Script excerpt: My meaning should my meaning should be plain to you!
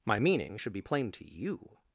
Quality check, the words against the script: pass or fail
fail